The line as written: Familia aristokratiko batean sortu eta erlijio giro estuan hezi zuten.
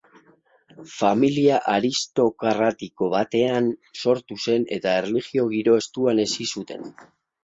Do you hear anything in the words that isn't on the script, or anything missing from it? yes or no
yes